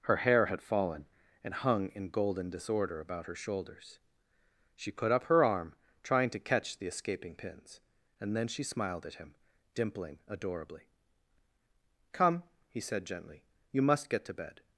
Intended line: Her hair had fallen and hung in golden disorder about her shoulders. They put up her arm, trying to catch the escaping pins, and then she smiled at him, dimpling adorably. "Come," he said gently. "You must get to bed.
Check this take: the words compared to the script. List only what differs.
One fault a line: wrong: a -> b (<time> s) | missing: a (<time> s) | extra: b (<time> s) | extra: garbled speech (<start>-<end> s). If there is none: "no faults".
wrong: They -> She (4.7 s)